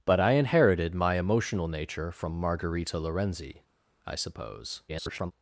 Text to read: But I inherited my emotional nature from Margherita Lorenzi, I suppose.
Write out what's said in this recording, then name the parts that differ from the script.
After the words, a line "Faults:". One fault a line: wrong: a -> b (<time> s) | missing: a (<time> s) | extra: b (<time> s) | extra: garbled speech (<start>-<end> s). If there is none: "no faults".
But I inherited my emotional nature from Margherita Lorenzi, I suppose. [garbled]
Faults:
extra: garbled speech (4.9-5.3 s)